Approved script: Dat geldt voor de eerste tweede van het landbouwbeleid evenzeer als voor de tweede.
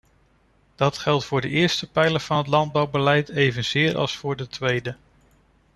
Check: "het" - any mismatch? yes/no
no